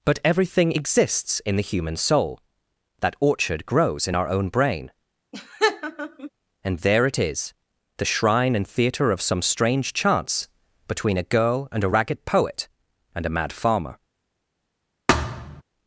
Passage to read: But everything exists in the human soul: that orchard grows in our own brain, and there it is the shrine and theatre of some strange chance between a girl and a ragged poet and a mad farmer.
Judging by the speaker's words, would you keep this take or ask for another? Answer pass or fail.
pass